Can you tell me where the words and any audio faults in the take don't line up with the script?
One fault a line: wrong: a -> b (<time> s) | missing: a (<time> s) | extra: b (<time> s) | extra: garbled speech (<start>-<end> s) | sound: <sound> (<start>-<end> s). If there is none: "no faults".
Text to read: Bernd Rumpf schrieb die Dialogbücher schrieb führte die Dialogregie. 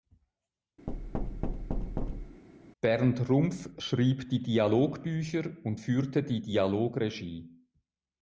sound: thud (0.9-2.4 s)
wrong: schrieb -> und (5.6 s)